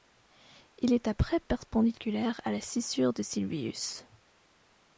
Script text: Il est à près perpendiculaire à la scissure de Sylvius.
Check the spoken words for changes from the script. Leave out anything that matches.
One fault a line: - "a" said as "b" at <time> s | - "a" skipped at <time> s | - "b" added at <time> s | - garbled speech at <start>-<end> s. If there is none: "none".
none